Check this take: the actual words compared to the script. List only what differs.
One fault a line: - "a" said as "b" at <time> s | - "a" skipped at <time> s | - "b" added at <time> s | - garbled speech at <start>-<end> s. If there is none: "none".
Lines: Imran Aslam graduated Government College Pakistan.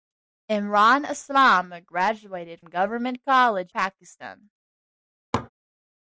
none